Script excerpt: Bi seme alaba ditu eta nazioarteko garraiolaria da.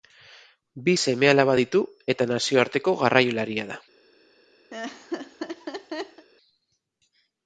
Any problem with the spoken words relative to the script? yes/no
no